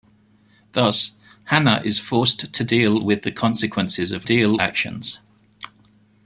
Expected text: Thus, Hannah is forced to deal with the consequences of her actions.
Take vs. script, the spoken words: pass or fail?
fail